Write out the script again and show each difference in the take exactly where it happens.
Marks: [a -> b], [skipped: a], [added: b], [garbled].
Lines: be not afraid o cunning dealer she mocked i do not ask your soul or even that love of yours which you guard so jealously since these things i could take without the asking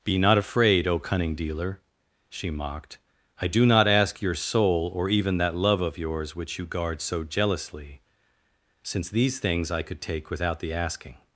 be not afraid o cunning dealer she mocked i do not ask your soul or even that love of yours which you guard so jealously since these things i could take without the asking